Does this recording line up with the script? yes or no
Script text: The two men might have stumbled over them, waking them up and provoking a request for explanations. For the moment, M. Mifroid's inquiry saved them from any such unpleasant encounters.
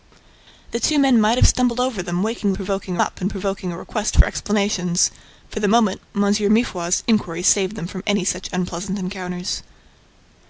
no